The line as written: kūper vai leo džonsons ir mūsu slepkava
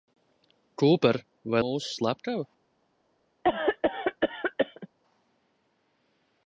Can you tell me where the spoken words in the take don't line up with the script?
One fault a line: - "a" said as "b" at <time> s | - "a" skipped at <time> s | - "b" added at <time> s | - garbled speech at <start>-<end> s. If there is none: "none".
- "leo džonsons ir" skipped at 1.6 s